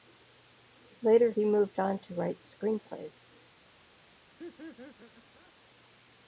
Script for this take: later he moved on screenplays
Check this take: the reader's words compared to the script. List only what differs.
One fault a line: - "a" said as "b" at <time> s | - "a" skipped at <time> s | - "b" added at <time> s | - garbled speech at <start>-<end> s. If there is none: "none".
- "to write" added at 2.0 s